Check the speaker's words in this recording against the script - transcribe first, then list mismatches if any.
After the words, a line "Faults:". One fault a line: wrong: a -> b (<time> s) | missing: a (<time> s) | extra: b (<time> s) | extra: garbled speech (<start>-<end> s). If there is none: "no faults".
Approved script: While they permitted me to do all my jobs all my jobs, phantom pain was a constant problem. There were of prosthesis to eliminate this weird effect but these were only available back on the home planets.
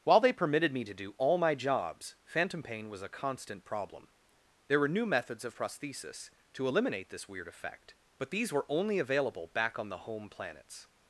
While they permitted me to do all my jobs, phantom pain was a constant problem. There were new methods of prosthesis to eliminate this weird effect but these were only available back on the home planets.
Faults:
missing: all my jobs (2.1 s)
extra: new methods (4.9 s)